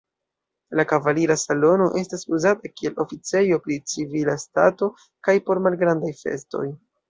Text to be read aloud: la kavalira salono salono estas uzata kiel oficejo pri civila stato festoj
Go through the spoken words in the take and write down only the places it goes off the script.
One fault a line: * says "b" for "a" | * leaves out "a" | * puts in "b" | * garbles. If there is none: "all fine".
* leaves out "salono"
* puts in "kaj por malgrandaj"